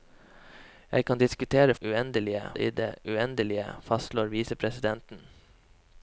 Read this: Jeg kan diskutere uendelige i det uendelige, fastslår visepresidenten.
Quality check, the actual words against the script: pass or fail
pass